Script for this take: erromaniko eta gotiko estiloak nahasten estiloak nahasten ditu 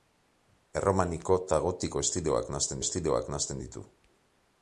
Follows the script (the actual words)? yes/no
yes